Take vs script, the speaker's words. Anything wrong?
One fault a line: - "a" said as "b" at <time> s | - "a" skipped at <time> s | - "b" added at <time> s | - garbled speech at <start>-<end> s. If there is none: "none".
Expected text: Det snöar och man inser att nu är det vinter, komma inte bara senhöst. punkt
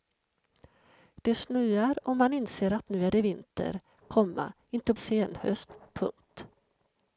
- "bara" skipped at 4.9 s